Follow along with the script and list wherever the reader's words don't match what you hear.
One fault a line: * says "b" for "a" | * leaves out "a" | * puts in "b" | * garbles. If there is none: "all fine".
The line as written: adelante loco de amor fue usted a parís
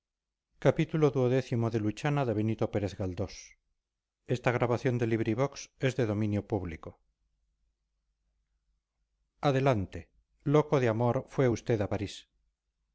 all fine